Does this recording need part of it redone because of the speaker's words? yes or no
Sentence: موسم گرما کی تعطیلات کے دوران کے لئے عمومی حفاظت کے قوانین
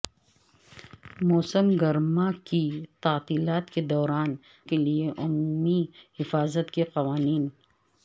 no